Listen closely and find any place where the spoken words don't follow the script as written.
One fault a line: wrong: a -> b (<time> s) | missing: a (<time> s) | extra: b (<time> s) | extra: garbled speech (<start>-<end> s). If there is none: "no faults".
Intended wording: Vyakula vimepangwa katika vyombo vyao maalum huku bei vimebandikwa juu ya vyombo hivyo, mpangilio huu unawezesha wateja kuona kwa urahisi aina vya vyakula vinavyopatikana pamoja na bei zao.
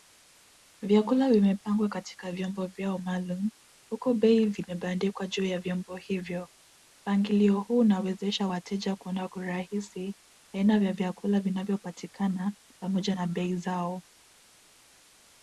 no faults